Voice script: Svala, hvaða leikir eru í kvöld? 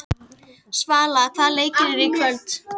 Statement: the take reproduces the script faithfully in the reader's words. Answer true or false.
true